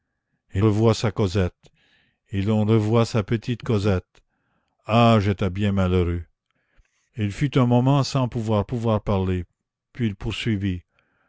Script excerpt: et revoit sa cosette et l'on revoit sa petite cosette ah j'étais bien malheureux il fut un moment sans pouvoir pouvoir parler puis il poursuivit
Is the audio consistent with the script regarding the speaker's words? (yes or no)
yes